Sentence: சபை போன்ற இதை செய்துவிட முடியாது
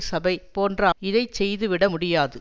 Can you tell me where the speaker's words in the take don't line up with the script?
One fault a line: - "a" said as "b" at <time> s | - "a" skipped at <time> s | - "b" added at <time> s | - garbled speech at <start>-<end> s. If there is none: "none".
none